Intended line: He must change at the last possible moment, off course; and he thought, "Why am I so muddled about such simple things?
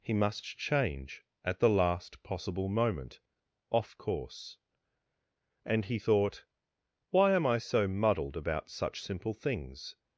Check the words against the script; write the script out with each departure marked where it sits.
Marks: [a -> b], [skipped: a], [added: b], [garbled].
He must change at the last possible moment, off course; and he thought, "Why am I so muddled about such simple things?